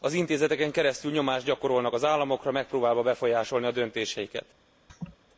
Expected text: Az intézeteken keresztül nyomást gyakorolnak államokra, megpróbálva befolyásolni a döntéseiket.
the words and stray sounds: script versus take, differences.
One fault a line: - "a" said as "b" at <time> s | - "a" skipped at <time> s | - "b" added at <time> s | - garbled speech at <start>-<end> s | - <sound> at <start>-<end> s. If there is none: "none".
- "az" added at 1.9 s
- laugh at 4.9-5.2 s